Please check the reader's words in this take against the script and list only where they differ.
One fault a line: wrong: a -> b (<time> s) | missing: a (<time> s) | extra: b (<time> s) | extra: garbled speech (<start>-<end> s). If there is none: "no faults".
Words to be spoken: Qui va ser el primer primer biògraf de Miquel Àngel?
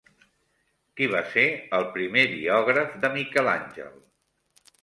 missing: primer (2.2 s)